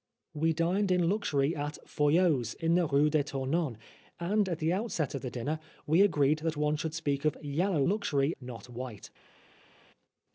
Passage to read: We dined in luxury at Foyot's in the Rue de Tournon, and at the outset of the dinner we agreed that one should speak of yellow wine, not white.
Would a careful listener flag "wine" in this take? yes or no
yes